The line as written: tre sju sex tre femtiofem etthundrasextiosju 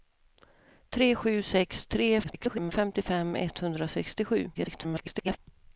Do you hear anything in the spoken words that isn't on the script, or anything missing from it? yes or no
yes